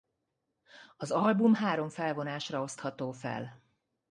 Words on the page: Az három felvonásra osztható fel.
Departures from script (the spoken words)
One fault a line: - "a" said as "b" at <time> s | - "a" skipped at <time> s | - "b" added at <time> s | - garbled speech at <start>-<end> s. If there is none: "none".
- "album" added at 1.1 s